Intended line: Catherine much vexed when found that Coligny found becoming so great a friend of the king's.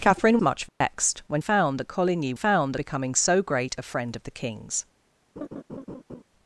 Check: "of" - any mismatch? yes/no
no